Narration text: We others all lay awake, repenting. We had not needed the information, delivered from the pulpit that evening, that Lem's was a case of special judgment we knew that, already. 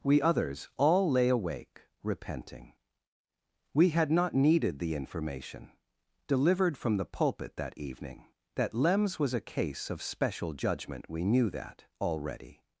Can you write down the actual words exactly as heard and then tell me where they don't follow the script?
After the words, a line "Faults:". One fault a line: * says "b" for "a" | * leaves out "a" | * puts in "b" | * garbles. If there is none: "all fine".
We others all lay awake, repenting. We had not needed the information, delivered from the pulpit that evening, that Lem's was a case of special judgment we knew that, already.
Faults:
all fine